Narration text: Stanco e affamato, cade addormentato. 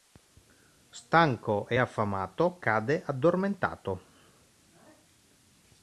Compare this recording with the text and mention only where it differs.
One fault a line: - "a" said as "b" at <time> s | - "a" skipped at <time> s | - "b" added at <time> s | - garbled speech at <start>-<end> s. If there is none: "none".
none